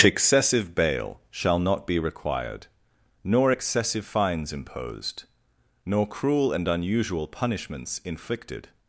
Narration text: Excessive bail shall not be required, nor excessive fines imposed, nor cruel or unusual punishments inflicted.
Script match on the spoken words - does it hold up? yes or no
no